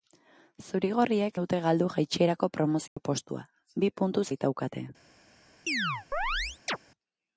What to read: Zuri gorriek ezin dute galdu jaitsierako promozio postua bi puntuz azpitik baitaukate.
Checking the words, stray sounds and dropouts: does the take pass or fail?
fail